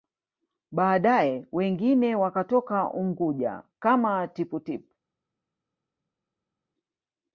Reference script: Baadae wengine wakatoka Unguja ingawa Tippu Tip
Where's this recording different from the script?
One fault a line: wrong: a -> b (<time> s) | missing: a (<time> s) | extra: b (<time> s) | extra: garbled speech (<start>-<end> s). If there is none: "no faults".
wrong: ingawa -> kama (3.8 s)